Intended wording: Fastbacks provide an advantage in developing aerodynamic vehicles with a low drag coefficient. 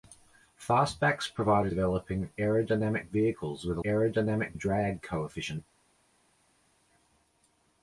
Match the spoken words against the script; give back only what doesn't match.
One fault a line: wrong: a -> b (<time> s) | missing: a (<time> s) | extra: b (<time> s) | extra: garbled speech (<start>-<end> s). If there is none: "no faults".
missing: an advantage in (1.7 s)
wrong: low -> aerodynamic (3.8 s)